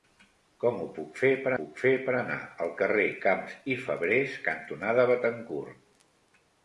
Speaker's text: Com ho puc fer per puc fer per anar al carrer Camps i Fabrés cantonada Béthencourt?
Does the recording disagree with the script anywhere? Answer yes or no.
no